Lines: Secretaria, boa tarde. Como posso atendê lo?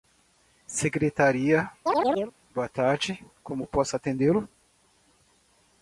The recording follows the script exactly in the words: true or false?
true